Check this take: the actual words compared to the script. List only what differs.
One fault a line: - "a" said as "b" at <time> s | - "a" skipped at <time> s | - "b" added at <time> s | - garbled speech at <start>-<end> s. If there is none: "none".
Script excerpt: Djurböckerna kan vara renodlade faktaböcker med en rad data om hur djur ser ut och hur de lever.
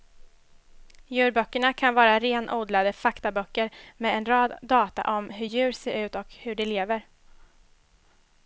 none